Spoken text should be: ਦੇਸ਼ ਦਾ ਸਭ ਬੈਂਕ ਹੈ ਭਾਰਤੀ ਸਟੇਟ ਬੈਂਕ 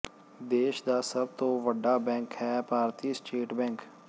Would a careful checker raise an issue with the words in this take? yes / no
yes